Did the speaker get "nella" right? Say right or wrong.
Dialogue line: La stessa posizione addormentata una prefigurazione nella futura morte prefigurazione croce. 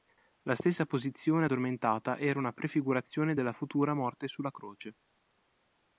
wrong